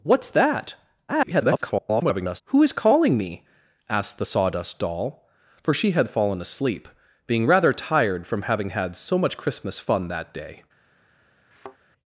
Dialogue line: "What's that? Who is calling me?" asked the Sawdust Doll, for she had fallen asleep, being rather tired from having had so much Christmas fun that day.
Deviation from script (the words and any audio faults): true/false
true